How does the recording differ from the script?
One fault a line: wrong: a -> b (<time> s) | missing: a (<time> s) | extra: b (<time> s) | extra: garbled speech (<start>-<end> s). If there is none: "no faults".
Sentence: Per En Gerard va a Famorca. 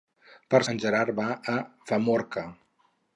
no faults